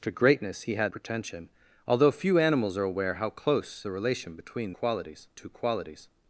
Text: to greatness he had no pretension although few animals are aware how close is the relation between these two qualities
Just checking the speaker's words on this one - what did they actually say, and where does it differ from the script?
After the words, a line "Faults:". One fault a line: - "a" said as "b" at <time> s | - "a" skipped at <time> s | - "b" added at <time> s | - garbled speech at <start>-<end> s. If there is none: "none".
to greatness he had pretension although few animals are aware how close the relation between qualities two qualities
Faults:
- "no" skipped at 0.9 s
- "is" skipped at 3.8 s
- "these" said as "qualities" at 4.7 s